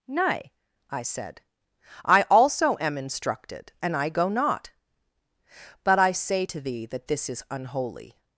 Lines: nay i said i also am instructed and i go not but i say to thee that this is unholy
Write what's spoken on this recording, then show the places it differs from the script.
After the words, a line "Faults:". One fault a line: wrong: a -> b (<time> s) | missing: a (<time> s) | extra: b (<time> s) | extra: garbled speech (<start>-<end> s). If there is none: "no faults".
nay i said i also am instructed and i go not but i say to thee that this is unholy
Faults:
no faults